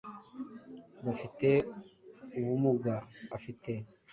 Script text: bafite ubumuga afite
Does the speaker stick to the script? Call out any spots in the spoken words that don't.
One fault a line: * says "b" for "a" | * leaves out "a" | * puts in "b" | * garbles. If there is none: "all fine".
all fine